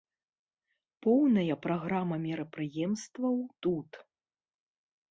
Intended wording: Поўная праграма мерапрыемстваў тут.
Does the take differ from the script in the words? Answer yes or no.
no